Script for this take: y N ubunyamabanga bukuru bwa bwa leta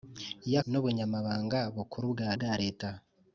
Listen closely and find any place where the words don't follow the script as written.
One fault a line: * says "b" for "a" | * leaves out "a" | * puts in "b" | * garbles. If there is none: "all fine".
all fine